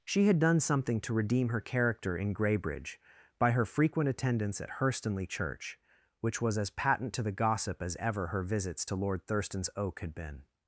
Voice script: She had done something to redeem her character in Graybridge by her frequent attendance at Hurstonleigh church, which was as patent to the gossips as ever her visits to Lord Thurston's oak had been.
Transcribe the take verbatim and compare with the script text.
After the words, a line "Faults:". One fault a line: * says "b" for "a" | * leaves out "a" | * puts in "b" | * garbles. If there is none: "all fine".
She had done something to redeem her character in Graybridge by her frequent attendance at Hurstonleigh church, which was as patent to the gossip as ever her visits to Lord Thurston's oak had been.
Faults:
* says "gossip" for "gossips"